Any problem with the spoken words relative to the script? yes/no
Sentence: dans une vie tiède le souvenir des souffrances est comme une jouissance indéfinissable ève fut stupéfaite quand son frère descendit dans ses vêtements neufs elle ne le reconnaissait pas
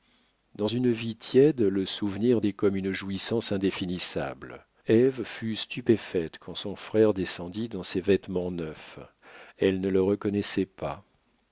yes